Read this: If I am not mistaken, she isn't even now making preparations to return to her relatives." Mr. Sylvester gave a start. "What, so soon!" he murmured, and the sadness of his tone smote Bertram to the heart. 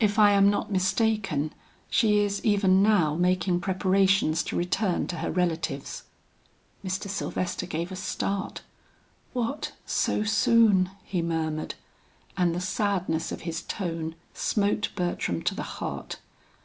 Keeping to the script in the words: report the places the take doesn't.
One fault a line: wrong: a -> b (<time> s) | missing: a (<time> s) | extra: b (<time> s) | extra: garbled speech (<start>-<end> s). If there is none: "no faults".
wrong: isn't -> is (2.2 s)